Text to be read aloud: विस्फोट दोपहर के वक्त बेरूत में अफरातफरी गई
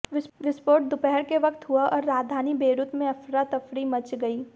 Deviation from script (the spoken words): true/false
true